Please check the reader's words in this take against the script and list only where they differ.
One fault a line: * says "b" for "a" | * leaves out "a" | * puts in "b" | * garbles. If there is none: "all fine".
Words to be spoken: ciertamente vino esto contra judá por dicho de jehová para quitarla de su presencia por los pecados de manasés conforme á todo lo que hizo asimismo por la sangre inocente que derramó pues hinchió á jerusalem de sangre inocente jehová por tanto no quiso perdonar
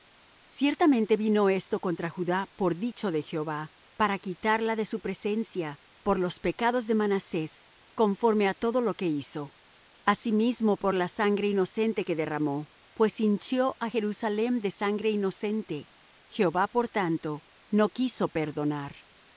all fine